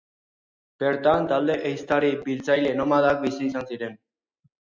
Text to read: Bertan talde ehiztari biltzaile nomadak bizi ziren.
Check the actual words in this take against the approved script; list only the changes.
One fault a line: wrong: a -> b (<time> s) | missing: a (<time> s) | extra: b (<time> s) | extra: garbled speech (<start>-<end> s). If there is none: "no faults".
extra: izan (3.5 s)